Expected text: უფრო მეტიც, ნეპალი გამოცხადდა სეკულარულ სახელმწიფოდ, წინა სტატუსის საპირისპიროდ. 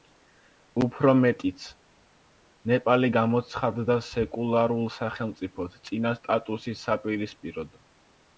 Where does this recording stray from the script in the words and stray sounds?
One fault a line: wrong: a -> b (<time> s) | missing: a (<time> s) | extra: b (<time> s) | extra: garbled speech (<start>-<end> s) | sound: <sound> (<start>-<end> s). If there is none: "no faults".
no faults